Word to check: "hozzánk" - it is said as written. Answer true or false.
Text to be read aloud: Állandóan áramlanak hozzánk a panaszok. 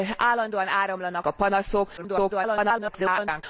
false